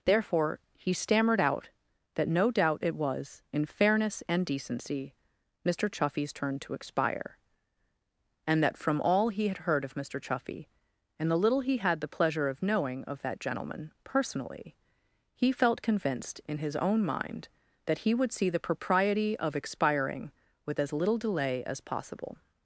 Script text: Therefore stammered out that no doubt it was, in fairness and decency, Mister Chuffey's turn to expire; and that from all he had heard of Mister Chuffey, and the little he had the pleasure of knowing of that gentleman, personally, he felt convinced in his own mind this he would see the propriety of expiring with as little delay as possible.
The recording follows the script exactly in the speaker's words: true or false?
false